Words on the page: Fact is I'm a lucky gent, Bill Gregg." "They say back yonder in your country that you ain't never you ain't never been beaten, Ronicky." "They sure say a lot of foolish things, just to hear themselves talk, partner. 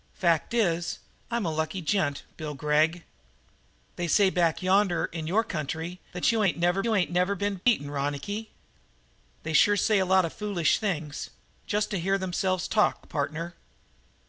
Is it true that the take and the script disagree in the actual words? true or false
false